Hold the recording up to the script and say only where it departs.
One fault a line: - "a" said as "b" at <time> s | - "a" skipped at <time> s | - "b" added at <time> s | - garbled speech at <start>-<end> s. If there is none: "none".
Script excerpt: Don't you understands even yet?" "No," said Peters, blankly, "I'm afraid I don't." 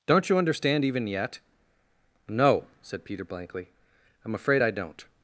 - "understands" said as "understand" at 0.4 s
- "Peters" said as "Peter" at 3.0 s